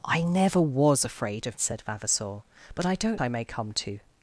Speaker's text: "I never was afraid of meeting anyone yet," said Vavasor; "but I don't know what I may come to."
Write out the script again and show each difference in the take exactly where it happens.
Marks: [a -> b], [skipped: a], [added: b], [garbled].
"I never was afraid of [skipped: meeting anyone yet,"] said Vavasor; "but I don't [skipped: know what] I may come to."